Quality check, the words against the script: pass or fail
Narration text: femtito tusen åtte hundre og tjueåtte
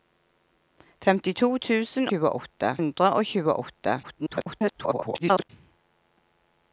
fail